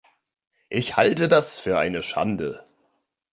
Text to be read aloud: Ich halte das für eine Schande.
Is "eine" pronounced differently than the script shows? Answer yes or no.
no